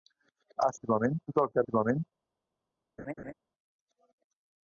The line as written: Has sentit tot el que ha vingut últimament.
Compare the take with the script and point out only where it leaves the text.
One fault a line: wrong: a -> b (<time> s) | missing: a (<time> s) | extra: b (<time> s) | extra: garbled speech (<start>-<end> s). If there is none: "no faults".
wrong: sentit -> últimament (0.8 s)
missing: vingut (1.7 s)